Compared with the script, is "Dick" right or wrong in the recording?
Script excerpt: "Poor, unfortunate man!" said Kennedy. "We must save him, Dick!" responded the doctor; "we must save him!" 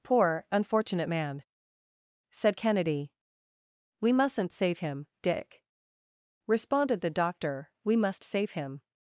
right